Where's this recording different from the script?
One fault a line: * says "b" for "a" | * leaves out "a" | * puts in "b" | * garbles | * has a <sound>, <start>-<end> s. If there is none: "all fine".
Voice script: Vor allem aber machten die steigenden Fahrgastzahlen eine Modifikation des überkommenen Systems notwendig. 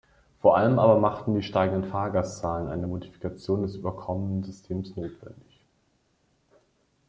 all fine